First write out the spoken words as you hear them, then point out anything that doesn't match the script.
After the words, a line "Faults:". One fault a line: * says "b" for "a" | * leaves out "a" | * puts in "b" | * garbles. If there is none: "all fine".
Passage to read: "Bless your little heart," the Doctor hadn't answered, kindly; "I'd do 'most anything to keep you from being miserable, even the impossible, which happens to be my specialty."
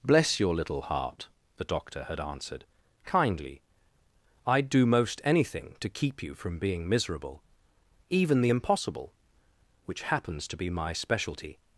"Bless your little heart," the Doctor had answered, kindly; "I'd do 'most anything to keep you from being miserable, even the impossible, which happens to be my specialty."
Faults:
* says "had" for "hadn't"